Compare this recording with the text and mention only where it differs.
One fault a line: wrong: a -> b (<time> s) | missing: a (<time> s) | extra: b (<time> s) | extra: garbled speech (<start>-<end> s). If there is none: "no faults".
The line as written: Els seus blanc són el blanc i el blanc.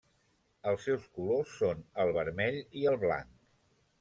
wrong: blanc -> colors (1.2 s)
wrong: blanc -> vermell (2.2 s)